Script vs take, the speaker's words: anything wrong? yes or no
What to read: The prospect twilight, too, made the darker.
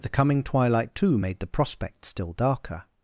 yes